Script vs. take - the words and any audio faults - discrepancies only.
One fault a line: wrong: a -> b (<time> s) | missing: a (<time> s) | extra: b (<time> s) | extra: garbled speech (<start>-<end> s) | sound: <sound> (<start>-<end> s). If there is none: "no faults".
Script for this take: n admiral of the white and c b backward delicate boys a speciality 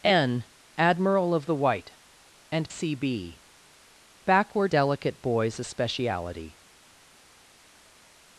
no faults